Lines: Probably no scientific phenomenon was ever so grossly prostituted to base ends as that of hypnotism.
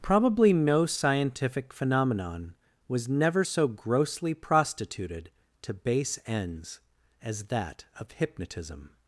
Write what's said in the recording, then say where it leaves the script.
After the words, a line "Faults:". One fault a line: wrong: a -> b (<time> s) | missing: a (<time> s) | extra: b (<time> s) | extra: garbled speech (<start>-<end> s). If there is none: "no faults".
Probably no scientific phenomenon was never so grossly prostituted to base ends as that of hypnotism.
Faults:
wrong: ever -> never (3.1 s)